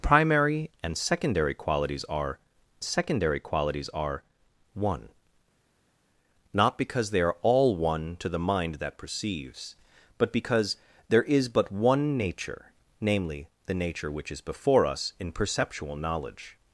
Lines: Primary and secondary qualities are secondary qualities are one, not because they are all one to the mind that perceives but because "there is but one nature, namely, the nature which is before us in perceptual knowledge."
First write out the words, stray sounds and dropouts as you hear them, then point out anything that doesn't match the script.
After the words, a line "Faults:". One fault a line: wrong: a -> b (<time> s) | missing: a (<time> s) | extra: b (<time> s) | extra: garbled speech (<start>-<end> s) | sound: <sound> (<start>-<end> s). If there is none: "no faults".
Primary and secondary qualities are secondary qualities are one, not because they are all one to the mind that perceives but because "there is but one nature, namely, the nature which is before us in perceptual knowledge."
Faults:
no faults